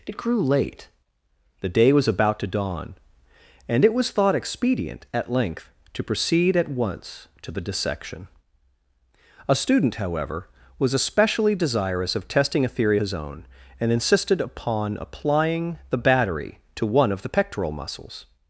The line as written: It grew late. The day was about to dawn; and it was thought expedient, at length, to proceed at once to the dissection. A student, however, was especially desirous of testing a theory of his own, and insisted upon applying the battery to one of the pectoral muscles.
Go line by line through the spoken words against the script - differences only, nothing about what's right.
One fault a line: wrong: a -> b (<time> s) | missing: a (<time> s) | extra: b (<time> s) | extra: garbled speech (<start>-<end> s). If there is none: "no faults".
missing: of (13.0 s)